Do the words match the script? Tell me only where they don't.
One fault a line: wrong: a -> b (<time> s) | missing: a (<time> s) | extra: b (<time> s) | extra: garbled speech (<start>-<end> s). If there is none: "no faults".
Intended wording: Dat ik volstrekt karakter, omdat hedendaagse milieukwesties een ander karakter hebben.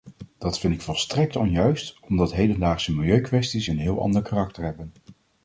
extra: vind (0.6 s)
wrong: karakter -> onjuist (1.4 s)
extra: heel (3.8 s)